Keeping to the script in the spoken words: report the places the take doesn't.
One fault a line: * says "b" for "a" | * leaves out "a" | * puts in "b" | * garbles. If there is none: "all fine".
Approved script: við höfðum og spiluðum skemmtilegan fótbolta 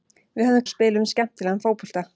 all fine